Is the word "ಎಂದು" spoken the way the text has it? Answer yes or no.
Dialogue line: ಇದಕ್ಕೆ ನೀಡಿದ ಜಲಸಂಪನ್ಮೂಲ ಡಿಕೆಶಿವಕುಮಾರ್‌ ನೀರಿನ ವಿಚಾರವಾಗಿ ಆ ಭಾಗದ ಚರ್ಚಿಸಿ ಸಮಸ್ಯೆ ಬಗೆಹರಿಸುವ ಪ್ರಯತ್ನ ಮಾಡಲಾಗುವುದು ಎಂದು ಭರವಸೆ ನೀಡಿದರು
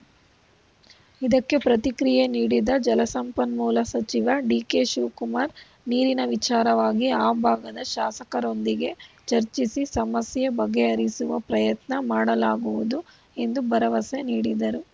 yes